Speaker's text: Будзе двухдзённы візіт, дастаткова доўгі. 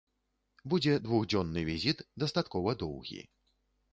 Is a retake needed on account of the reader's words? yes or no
no